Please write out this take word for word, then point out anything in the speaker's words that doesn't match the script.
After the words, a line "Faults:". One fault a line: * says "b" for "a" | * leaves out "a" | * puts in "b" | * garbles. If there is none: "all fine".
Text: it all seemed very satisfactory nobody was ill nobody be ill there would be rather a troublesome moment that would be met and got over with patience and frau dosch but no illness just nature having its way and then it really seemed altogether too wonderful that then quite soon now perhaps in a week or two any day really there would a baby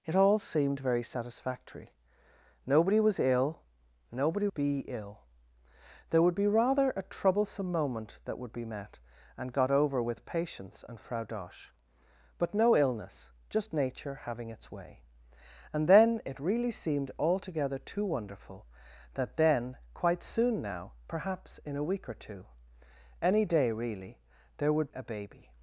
it all seemed very satisfactory nobody was ill nobody be ill there would be rather a troublesome moment that would be met and got over with patience and frau dosch but no illness just nature having its way and then it really seemed altogether too wonderful that then quite soon now perhaps in a week or two any day really there would a baby
Faults:
all fine